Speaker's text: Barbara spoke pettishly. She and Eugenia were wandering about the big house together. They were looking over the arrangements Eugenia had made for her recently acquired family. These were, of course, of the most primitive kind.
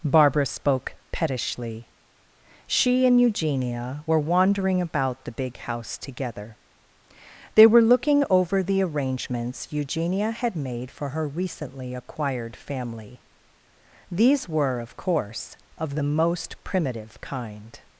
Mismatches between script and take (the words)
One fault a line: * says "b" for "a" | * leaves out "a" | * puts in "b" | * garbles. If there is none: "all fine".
all fine